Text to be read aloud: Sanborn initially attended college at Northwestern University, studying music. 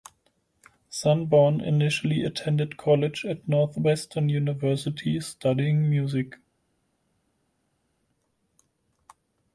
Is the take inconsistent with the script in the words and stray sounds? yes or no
no